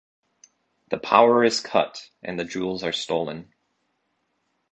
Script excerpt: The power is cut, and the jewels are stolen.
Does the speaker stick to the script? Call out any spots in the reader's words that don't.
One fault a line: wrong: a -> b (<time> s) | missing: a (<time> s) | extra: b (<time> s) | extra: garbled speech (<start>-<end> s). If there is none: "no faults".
no faults